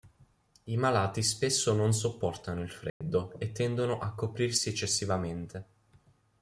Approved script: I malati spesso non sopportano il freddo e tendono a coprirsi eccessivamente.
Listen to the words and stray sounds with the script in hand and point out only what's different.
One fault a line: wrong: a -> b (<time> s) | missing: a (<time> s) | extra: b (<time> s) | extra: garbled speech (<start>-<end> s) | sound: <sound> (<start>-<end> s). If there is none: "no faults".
sound: dropout (2.9-3.0 s)